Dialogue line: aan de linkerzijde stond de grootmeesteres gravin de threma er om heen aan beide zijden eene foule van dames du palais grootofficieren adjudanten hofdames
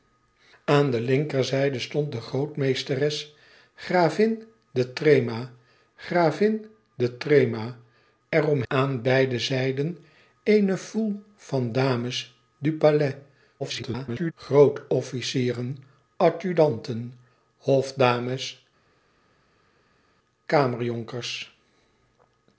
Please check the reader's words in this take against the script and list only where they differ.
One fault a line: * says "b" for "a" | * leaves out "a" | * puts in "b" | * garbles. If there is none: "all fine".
* puts in "gravin de threma"
* leaves out "heen"
* garbles